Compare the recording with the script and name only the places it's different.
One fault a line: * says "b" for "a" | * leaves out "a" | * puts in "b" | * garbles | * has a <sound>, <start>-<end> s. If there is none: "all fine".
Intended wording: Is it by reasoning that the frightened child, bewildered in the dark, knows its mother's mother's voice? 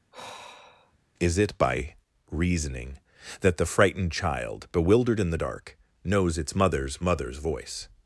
* has a sigh, 0.1-1.0 s